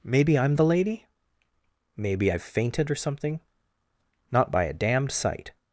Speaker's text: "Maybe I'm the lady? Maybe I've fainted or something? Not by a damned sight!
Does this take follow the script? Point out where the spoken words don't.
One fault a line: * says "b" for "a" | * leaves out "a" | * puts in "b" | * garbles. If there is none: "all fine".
all fine